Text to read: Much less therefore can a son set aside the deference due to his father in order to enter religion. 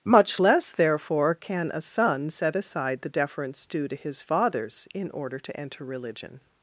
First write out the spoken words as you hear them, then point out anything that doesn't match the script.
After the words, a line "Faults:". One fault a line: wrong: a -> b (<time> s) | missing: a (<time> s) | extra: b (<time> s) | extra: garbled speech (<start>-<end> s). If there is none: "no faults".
Much less therefore can a son set aside the deference due to his fathers in order to enter religion.
Faults:
wrong: father -> fathers (4.2 s)